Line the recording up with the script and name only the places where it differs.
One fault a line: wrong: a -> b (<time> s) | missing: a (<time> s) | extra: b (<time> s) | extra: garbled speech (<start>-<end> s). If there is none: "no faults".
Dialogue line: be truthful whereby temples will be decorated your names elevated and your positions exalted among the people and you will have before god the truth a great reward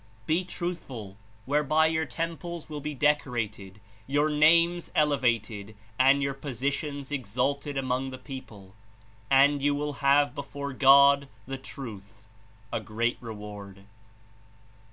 extra: your (1.9 s)